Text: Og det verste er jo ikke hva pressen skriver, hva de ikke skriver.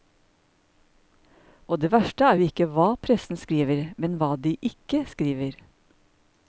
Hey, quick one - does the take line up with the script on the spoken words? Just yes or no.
no